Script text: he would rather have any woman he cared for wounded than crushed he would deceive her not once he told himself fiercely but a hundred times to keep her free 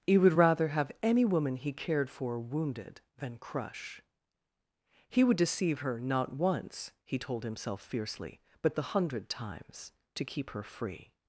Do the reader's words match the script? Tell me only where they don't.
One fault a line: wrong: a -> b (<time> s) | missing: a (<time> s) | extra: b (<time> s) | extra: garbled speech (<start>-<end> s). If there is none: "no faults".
wrong: crushed -> crush (3.4 s)
wrong: a -> the (8.8 s)